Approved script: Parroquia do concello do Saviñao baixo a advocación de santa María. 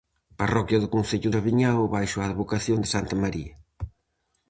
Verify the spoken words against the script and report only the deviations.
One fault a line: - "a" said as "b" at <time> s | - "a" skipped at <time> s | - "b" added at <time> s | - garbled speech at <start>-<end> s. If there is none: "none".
- "do" skipped at 1.3 s